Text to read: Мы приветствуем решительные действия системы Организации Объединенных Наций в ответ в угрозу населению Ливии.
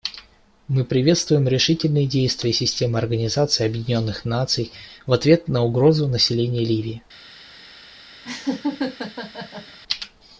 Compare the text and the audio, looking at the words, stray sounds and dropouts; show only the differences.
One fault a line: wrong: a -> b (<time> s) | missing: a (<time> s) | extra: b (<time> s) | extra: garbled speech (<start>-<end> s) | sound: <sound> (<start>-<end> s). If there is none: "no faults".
wrong: в -> на (5.5 s)
sound: laugh (8.2-9.8 s)